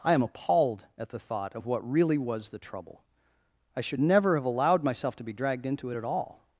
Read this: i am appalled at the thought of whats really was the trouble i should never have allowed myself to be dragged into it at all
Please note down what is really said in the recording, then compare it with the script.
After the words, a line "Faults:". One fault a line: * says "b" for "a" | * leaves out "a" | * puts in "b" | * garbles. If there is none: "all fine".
i am appalled at the thought of what really was the trouble i should never have allowed myself to be dragged into it at all
Faults:
* says "what" for "whats"